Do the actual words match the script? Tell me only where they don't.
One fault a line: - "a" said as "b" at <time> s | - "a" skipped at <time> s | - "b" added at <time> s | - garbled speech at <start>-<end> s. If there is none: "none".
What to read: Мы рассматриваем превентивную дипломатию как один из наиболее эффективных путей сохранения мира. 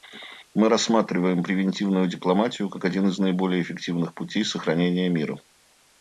none